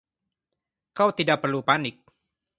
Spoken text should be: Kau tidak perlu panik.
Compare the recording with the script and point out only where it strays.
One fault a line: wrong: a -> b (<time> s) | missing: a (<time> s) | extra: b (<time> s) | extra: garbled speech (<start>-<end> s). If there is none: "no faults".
no faults